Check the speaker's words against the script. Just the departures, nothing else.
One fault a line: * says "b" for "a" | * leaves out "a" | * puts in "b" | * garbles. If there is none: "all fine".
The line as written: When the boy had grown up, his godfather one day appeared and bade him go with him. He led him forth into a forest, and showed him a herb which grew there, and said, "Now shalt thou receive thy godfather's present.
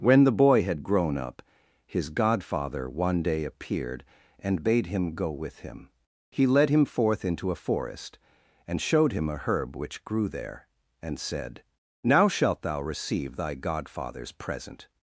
all fine